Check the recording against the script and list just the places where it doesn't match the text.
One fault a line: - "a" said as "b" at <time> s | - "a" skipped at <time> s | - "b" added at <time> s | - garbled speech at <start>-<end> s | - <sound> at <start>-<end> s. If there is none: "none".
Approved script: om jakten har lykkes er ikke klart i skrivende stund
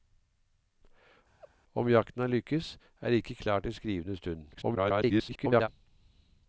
- laugh at 1.4-1.5 s
- garbled speech at 4.5-5.7 s